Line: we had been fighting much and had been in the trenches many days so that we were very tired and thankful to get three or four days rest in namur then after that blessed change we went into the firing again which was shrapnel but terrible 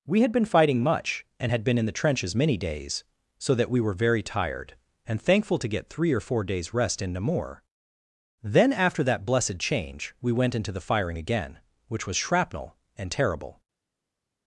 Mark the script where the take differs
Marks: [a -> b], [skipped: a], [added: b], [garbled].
we had been fighting much and had been in the trenches many days so that we were very tired and thankful to get three or four days rest in namur then after that blessed change we went into the firing again which was shrapnel [but -> and] terrible